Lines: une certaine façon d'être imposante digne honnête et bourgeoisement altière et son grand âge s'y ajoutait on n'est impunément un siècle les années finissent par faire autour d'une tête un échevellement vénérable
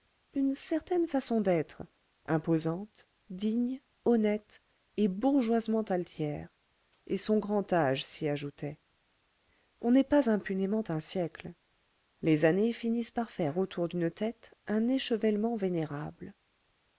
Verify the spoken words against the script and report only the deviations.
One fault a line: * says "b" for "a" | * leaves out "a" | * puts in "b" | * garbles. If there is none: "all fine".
* puts in "pas"